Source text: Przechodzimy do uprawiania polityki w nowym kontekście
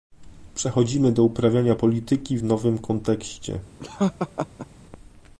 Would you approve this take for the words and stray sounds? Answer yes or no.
no